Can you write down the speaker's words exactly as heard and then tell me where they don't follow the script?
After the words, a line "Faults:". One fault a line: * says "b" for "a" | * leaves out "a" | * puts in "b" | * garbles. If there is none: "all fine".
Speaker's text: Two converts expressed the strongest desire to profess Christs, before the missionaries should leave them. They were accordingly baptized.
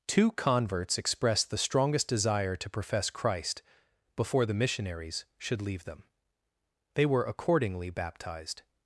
Two converts expressed the strongest desire to profess Christ, before the missionaries should leave them. They were accordingly baptized.
Faults:
* says "Christ" for "Christs"